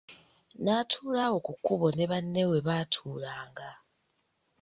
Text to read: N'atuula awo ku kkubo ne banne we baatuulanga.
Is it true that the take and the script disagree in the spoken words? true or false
false